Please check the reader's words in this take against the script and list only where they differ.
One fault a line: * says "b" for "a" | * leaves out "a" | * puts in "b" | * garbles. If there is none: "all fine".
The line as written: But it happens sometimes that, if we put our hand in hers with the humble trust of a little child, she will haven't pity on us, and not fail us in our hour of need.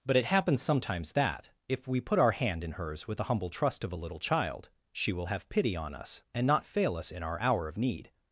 * says "have" for "haven't"